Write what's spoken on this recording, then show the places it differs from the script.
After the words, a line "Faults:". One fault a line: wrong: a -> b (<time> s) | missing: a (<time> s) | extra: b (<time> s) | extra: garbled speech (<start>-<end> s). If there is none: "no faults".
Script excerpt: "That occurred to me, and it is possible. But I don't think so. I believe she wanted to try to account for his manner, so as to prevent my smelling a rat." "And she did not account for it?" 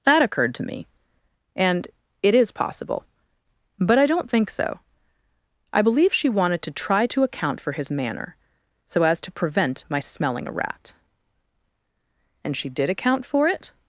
"That occurred to me, and it is possible. But I don't think so. I believe she wanted to try to account for his manner, so as to prevent my smelling a rat." "And she did account for it?"
Faults:
missing: not (12.9 s)